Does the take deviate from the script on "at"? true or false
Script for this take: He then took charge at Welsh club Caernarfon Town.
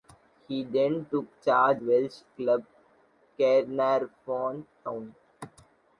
true